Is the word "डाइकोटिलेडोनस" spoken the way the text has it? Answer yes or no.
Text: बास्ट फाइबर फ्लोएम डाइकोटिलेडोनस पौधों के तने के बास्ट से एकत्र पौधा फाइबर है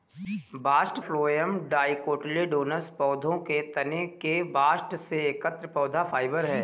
yes